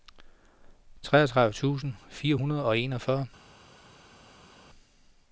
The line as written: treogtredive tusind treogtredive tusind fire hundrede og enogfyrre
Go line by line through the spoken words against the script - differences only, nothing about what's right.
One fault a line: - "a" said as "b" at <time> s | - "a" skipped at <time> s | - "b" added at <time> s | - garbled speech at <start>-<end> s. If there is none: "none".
- "treogtredive tusind" skipped at 1.9 s